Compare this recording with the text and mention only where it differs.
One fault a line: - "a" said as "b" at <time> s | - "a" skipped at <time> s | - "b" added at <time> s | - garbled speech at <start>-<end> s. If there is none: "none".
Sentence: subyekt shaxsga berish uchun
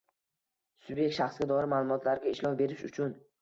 - "doir ma'lumotlarga ishlov" added at 1.5 s